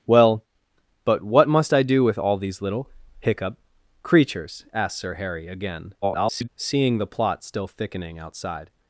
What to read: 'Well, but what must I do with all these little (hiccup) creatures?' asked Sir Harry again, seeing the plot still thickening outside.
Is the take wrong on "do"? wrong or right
right